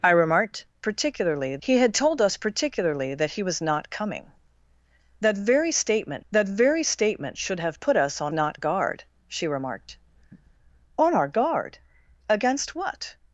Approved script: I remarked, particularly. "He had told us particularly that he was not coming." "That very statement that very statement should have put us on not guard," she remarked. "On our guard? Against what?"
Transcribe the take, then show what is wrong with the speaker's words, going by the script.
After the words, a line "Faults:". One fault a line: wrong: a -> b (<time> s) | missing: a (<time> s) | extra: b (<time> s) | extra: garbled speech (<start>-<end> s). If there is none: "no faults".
I remarked, particularly. "He had told us particularly that he was not coming." "That very statement that very statement should have put us on not guard," she remarked. "On our guard? Against what?"
Faults:
no faults